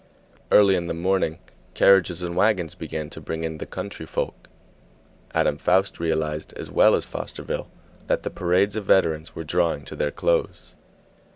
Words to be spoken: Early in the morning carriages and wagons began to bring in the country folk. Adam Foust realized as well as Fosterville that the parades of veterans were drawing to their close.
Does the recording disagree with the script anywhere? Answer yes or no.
no